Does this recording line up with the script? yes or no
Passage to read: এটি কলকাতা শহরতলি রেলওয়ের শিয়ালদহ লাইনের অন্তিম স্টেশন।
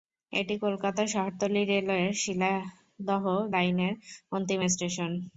yes